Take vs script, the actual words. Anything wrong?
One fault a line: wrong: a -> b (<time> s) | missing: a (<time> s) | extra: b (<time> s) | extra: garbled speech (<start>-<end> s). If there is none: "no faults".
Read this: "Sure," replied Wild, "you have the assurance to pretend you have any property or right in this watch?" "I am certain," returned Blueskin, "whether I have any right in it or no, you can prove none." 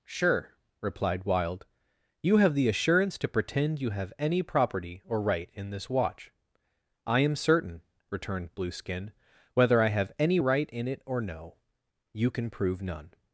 no faults